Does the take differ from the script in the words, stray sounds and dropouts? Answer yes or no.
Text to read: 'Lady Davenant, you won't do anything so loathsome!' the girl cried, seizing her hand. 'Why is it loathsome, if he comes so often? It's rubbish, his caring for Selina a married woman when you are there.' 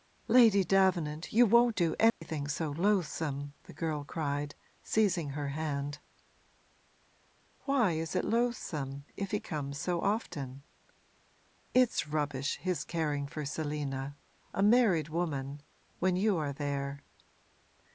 yes